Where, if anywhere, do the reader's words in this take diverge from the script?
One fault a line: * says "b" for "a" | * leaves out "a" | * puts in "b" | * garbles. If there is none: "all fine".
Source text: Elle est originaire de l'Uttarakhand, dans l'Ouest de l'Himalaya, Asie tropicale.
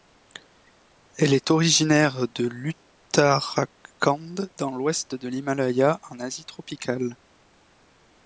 * puts in "en"